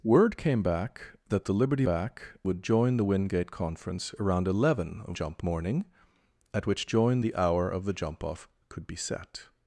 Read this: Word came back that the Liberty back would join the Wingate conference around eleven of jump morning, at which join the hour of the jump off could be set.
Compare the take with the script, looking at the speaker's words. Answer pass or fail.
pass